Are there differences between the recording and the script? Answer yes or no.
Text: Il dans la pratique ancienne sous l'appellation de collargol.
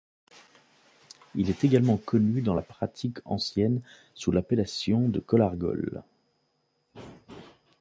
yes